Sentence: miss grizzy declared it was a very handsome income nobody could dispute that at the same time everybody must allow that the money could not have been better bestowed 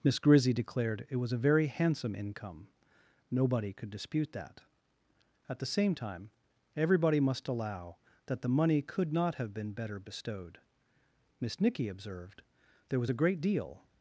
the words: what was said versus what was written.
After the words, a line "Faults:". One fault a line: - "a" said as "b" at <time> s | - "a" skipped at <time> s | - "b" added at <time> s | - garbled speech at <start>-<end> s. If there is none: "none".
miss grizzy declared it was a very handsome income nobody could dispute that at the same time everybody must allow that the money could not have been better bestowed miss nicky observed there was a great deal
Faults:
- "miss nicky observed there was a great deal" added at 11.4 s